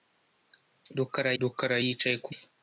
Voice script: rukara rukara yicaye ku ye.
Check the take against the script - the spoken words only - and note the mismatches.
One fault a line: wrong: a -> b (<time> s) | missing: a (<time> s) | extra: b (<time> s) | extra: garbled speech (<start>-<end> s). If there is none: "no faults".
no faults